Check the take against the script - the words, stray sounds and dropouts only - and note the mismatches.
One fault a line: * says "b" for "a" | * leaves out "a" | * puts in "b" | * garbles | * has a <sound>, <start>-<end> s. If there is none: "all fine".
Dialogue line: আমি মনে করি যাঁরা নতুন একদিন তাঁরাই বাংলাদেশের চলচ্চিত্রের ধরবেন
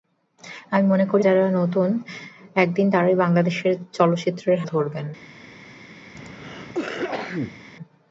* has a cough, 6.1-7.6 s